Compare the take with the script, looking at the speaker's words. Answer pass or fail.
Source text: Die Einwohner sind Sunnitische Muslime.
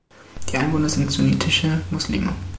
pass